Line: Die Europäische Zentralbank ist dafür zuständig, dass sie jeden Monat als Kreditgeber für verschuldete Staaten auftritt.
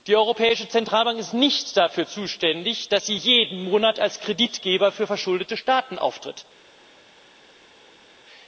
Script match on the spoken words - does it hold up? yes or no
no